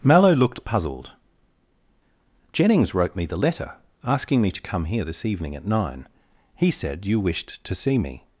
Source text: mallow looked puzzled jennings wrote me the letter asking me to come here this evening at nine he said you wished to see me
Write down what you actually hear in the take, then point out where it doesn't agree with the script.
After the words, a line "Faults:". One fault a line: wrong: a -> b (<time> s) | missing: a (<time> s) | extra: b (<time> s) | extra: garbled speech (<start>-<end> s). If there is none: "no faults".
mallow looked puzzled jennings wrote me the letter asking me to come here this evening at nine he said you wished to see me
Faults:
no faults